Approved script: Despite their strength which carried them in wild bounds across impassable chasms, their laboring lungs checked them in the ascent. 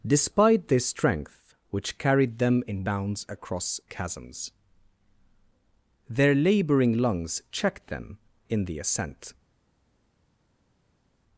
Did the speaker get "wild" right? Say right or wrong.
wrong